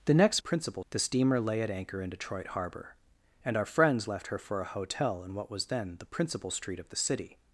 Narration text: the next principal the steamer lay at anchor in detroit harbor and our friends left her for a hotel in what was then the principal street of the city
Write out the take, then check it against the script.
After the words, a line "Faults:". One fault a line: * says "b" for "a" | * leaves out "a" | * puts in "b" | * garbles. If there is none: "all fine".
the next principal the steamer lay at anchor in detroit harbor and our friends left her for a hotel in what was then the principal street of the city
Faults:
all fine